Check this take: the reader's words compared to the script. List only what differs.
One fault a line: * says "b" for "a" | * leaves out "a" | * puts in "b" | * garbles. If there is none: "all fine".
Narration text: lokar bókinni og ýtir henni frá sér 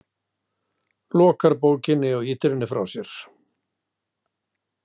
all fine